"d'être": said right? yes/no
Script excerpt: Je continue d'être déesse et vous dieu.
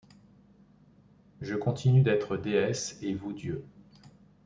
yes